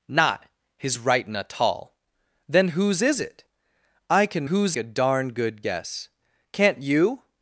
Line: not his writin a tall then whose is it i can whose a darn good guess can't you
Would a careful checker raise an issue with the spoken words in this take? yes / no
no